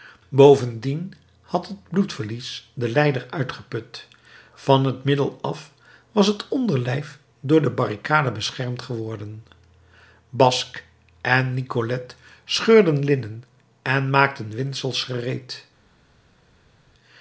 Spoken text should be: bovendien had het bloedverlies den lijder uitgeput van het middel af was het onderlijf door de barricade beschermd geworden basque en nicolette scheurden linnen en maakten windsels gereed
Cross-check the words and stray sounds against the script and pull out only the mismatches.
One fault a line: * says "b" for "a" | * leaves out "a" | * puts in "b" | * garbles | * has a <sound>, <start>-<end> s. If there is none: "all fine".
all fine